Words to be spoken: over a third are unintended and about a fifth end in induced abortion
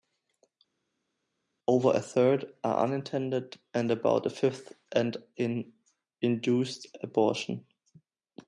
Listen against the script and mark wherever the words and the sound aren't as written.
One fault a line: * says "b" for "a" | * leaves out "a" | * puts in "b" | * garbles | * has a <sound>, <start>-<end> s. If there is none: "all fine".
all fine